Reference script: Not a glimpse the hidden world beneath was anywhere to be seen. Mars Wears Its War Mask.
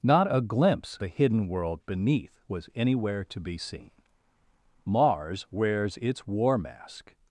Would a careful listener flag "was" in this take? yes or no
no